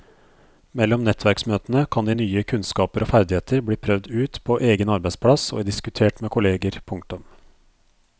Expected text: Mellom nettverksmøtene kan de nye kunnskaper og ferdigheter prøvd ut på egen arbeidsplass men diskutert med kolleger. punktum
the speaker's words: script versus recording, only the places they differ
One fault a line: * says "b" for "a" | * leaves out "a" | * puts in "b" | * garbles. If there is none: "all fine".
* puts in "bli"
* says "og" for "men"